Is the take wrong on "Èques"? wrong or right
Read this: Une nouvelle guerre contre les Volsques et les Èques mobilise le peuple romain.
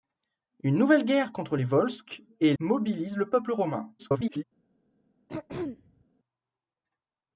wrong